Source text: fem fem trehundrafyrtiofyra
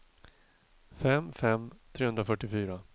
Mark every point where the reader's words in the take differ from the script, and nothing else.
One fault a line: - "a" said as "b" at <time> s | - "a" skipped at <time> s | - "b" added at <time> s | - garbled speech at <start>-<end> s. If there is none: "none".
none